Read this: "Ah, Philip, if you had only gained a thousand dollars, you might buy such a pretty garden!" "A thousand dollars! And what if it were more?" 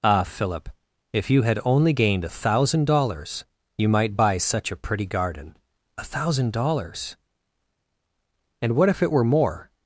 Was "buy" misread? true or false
false